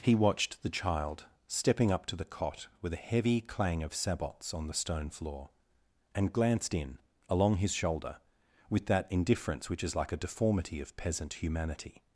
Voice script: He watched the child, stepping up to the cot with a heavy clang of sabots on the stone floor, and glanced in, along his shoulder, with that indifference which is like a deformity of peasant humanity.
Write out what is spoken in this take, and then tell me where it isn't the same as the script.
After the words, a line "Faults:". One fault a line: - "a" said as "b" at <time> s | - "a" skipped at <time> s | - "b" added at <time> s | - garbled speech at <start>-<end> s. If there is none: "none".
He watched the child, stepping up to the cot with a heavy clang of sabots on the stone floor, and glanced in, along his shoulder, with that indifference which is like a deformity of peasant humanity.
Faults:
none